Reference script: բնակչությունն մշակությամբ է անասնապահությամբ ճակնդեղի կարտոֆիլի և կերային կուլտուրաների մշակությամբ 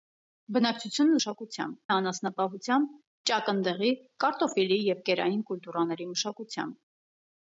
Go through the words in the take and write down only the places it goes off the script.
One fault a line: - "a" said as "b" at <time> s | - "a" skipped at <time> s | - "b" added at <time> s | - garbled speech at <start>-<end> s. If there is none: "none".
none